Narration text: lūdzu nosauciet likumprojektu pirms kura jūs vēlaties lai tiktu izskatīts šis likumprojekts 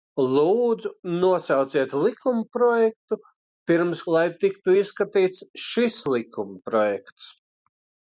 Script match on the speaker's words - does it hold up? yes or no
no